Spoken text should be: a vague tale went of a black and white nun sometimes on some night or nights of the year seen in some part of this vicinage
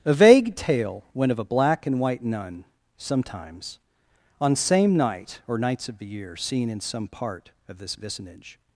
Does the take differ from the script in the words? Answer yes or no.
yes